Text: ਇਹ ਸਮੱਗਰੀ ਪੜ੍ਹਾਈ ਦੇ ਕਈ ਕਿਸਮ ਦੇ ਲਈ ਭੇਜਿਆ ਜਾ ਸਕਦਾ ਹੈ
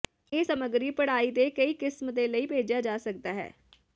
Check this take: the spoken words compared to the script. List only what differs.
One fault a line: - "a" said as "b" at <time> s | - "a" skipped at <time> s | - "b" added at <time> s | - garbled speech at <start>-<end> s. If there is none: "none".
none